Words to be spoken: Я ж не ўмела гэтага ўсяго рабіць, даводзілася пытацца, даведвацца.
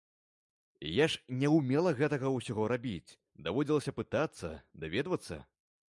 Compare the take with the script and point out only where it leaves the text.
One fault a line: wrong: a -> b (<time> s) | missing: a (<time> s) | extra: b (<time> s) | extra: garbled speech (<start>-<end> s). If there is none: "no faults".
no faults